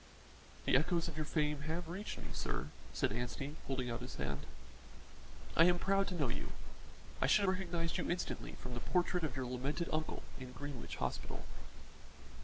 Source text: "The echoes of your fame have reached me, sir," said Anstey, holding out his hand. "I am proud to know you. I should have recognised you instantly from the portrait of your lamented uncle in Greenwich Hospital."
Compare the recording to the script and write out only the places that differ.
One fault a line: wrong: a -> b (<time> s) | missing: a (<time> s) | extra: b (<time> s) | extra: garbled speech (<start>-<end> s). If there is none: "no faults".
missing: have (7.4 s)